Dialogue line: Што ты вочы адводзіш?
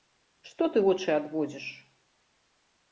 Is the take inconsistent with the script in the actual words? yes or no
no